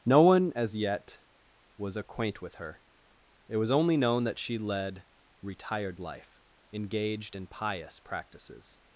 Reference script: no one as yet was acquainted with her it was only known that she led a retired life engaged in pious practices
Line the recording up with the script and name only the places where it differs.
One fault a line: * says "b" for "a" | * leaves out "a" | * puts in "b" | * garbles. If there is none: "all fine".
* says "acquaint" for "acquainted"
* leaves out "a"